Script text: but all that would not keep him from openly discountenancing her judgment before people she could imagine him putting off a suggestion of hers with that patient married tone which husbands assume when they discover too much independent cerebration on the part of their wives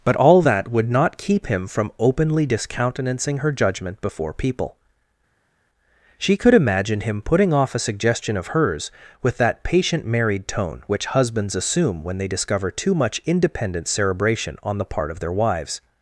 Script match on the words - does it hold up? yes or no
yes